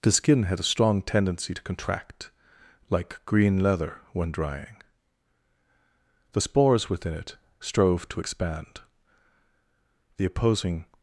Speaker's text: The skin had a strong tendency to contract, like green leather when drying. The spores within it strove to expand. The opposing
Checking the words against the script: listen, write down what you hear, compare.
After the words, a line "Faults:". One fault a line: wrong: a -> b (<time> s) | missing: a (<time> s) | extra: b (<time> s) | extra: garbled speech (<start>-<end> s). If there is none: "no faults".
The skin had a strong tendency to contract, like green leather when drying. The spores within it strove to expand. The opposing
Faults:
no faults